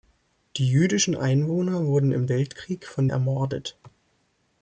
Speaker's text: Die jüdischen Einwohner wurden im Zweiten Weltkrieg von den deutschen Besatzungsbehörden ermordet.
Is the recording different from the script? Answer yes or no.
yes